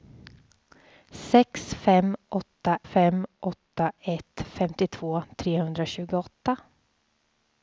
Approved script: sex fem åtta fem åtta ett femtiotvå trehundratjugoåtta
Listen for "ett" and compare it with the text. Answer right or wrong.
right